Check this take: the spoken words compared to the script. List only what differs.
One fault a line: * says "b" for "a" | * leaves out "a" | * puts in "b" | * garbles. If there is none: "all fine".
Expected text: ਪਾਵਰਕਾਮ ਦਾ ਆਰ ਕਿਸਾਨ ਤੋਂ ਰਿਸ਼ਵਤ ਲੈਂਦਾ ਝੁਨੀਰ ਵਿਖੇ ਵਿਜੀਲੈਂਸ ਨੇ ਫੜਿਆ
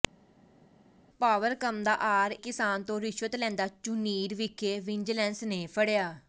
all fine